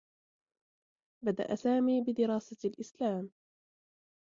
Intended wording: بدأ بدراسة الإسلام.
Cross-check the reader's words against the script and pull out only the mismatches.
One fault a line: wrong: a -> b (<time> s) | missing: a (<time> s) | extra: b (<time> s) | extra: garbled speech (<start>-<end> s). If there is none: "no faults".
extra: سامي (1.5 s)